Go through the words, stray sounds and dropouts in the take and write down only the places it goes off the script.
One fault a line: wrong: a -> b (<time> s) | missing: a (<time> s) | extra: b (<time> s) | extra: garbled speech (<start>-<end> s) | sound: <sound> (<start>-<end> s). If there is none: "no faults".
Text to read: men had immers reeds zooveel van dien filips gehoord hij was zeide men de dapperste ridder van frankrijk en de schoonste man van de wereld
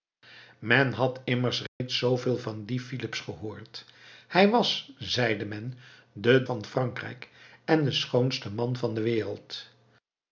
sound: dropout (1.7-1.8 s)
missing: dapperste ridder (6.5 s)